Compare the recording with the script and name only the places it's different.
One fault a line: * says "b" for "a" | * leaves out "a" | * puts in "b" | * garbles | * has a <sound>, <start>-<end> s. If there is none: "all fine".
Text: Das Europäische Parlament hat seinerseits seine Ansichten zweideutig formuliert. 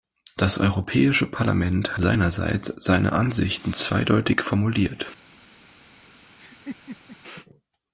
* leaves out "hat"
* has a laugh, 6.4-7.2 s